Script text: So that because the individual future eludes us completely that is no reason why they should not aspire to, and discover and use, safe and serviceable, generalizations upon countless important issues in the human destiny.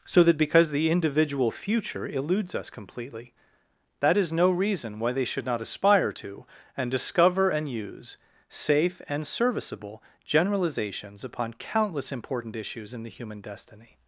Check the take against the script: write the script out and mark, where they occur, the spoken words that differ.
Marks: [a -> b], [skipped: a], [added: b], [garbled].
So that because the individual future eludes us completely that is no reason why they should not aspire to, and discover and use, safe and serviceable, generalizations upon countless important issues in the human destiny.